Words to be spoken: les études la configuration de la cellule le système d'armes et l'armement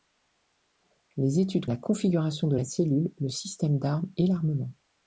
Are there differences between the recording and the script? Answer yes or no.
no